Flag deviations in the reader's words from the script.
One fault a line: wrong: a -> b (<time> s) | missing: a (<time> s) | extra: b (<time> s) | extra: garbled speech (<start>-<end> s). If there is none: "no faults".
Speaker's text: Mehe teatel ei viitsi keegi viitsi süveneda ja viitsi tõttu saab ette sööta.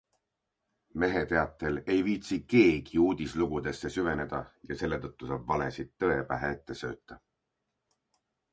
wrong: viitsi -> uudislugudesse (3.1 s)
wrong: viitsi -> selle (4.8 s)
extra: valesid tõe pähe (5.5 s)